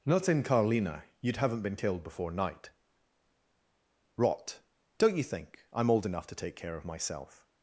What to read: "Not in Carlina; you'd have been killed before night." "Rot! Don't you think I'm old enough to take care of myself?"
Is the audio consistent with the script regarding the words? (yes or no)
no